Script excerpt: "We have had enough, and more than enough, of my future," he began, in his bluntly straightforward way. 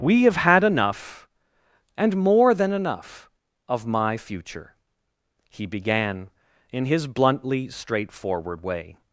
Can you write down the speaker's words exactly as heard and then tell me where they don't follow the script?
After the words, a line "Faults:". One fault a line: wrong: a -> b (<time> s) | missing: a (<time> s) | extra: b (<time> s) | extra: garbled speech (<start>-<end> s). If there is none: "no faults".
"We have had enough, and more than enough, of my future," he began, in his bluntly straightforward way.
Faults:
no faults